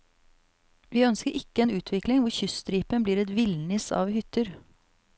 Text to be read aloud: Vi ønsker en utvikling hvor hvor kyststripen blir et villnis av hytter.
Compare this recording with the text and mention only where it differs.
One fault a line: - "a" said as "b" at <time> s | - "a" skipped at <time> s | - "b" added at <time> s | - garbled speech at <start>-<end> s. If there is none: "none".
- "ikke" added at 1.4 s
- "hvor" skipped at 2.3 s